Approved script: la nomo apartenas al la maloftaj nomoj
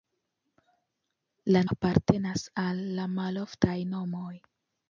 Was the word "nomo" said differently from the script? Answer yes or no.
yes